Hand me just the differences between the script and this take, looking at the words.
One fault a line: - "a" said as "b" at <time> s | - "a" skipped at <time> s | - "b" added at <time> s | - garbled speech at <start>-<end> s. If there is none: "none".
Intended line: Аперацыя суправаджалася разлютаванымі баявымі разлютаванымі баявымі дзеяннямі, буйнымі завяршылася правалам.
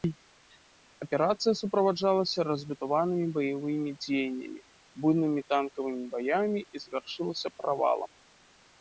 - "разлютаванымі баявымі дзеяннямі буйнымі" said as "дзеяннямі буйнымі танкавымі баямі і" at 4.0 s